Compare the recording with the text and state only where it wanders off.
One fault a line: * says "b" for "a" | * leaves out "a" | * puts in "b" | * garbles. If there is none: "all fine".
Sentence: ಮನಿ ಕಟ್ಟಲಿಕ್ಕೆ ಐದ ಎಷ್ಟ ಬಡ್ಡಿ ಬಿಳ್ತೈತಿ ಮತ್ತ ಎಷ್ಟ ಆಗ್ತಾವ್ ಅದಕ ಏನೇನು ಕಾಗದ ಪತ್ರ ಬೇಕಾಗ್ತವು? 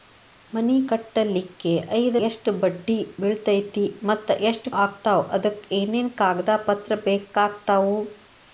all fine